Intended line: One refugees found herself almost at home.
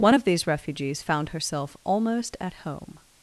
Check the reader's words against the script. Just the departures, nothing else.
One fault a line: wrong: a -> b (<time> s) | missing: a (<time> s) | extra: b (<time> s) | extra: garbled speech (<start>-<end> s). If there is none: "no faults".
extra: of these (0.1 s)